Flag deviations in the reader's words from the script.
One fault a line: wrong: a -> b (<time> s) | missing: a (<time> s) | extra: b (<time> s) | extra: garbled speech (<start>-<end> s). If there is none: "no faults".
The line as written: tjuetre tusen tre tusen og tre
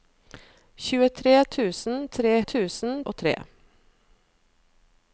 no faults